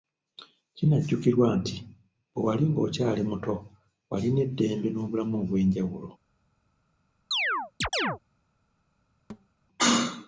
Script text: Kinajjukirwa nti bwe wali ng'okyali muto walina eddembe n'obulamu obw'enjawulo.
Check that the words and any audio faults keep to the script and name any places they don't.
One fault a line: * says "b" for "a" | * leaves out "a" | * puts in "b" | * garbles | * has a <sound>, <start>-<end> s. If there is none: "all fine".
* has a chirp, 7.3-8.2 s
* has a thud, 9.3-9.5 s